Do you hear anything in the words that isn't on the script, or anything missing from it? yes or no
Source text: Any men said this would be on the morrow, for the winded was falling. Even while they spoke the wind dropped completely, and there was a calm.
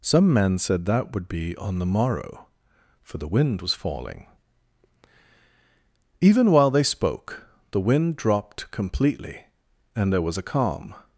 yes